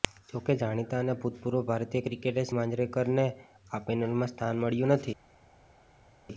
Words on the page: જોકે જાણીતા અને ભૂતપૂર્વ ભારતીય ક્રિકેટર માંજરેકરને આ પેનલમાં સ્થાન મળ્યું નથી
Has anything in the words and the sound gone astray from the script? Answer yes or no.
no